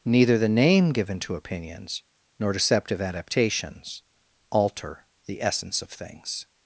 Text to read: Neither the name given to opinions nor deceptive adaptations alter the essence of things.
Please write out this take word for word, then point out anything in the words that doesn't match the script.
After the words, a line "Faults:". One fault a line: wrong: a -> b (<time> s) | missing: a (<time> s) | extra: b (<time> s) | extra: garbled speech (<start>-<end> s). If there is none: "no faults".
Neither the name given to opinions nor deceptive adaptations alter the essence of things.
Faults:
no faults